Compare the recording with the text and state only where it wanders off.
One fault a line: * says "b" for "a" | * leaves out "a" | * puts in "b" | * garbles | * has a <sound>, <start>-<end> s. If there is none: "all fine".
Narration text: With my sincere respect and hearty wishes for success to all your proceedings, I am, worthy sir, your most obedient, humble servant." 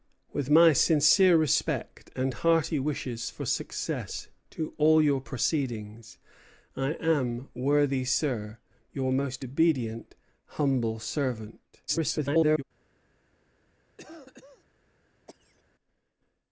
* garbles
* has a cough, 14.0-14.6 s
* has a cough, 15.3-15.6 s